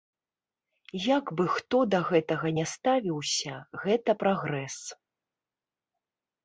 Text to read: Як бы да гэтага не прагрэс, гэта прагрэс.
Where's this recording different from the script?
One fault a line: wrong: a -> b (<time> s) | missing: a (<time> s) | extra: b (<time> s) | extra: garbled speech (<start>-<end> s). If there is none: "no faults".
extra: хто (1.6 s)
wrong: прагрэс -> ставіўся (2.8 s)